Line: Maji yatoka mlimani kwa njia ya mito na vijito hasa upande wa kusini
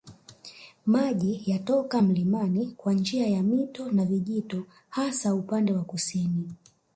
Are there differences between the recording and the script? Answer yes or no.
no